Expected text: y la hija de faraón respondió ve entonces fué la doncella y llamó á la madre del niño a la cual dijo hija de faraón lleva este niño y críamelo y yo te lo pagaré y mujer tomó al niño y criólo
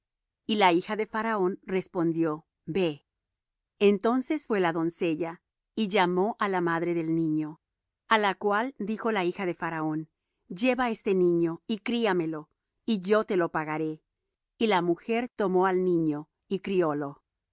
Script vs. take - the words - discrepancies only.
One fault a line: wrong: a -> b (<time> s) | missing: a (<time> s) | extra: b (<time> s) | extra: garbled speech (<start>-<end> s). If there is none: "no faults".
extra: la (9.1 s)
extra: la (14.7 s)